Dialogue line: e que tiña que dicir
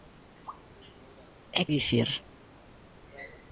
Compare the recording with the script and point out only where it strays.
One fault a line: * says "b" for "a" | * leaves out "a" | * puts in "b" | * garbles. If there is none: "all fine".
* leaves out "que tiña que"